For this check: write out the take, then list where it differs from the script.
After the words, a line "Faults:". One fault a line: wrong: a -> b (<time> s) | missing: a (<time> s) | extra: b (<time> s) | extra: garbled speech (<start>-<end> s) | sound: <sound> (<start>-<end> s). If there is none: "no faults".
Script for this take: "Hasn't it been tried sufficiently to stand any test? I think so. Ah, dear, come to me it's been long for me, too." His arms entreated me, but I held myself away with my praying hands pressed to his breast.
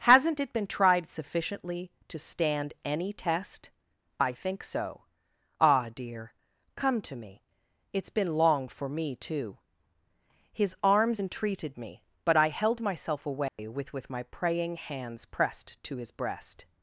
"Hasn't it been tried sufficiently to stand any test? I think so. Ah, dear, come to me it's been long for me, too." His arms entreated me, but I held myself away with with my praying hands pressed to his breast.
Faults:
sound: dropout (13.5-13.6 s)
extra: with (13.9 s)